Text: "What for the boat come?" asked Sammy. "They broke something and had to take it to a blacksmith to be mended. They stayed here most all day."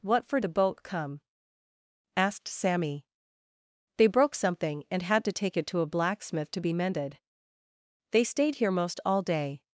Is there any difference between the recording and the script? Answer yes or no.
no